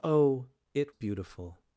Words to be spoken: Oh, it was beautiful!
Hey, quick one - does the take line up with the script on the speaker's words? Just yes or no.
no